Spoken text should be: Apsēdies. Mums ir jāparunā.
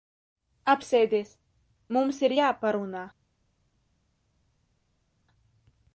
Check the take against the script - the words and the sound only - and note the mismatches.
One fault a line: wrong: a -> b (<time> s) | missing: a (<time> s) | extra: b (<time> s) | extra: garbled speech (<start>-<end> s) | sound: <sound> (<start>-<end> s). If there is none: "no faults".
no faults